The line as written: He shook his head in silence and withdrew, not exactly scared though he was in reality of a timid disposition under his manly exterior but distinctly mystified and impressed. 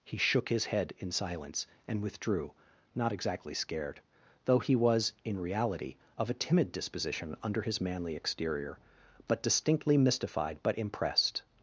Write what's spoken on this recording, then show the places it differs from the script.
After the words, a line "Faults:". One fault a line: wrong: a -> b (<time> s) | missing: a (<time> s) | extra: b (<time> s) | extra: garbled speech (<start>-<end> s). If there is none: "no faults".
He shook his head in silence and withdrew, not exactly scared though he was in reality of a timid disposition under his manly exterior but distinctly mystified but impressed.
Faults:
wrong: and -> but (10.6 s)